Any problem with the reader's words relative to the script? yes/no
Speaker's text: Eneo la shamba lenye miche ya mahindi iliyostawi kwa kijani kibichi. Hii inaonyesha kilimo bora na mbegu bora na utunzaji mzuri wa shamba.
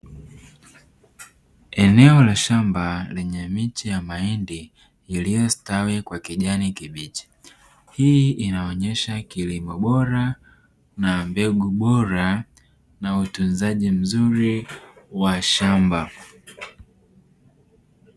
no